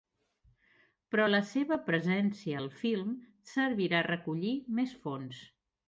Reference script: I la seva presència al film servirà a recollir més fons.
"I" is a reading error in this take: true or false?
true